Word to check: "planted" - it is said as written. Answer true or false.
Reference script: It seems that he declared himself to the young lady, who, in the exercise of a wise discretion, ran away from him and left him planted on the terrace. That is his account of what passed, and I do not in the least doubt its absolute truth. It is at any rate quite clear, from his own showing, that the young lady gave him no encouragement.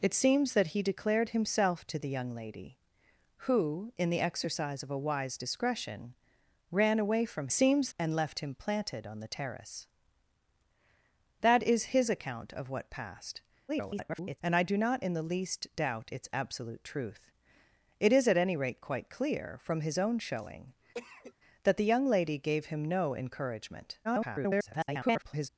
true